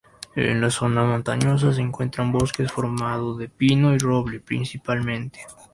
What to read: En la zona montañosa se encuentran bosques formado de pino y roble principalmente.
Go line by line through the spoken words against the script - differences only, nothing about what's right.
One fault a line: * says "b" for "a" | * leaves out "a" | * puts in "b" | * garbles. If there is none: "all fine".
all fine